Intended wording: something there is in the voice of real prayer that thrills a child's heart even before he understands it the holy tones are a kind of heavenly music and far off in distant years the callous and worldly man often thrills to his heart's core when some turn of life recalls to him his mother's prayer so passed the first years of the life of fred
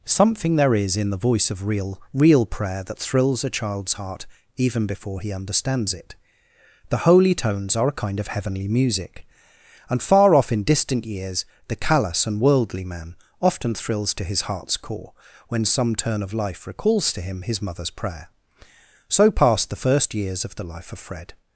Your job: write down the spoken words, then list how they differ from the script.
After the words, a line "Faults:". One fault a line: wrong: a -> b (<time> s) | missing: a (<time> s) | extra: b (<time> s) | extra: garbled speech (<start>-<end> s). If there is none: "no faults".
something there is in the voice of real real prayer that thrills a child's heart even before he understands it the holy tones are a kind of heavenly music and far off in distant years the callous and worldly man often thrills to his heart's core when some turn of life recalls to him his mother's prayer so passed the first years of the life of fred
Faults:
extra: real (2.1 s)